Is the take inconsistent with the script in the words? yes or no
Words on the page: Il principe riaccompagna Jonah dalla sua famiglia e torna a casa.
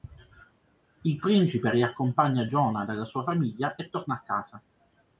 no